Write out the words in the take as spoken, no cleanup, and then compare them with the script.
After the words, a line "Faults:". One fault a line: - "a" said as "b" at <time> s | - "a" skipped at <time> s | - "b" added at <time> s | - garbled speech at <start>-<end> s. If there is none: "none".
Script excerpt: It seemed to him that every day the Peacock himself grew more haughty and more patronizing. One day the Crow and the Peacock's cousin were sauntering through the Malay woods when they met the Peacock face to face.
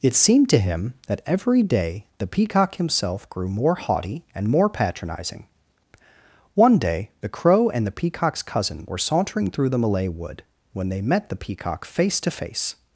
It seemed to him that every day the Peacock himself grew more haughty and more patronizing. One day the Crow and the Peacock's cousin were sauntering through the Malay wood when they met the Peacock face to face.
Faults:
- "woods" said as "wood" at 10.1 s